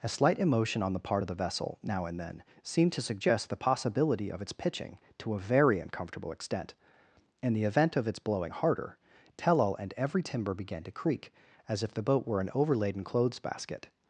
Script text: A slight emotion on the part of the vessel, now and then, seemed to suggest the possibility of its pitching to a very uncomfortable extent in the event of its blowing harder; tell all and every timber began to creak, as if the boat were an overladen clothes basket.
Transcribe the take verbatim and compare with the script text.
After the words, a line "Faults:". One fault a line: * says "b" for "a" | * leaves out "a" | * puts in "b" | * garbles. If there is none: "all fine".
A slight emotion on the part of the vessel, now and then, seemed to suggest the possibility of its pitching to a very uncomfortable extent in the event of its blowing harder; tell all and every timber began to creak, as if the boat were an overladen clothes basket.
Faults:
all fine